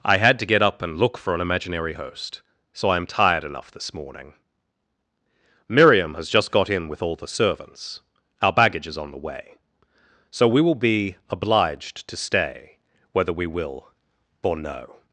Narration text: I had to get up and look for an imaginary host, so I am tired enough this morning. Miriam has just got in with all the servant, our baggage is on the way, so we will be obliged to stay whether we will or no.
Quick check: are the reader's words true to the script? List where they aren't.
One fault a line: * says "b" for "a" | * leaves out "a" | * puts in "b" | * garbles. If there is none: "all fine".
* says "servants" for "servant"